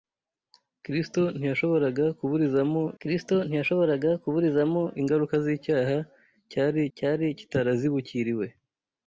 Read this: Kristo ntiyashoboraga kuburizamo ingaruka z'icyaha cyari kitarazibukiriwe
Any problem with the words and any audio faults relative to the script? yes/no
yes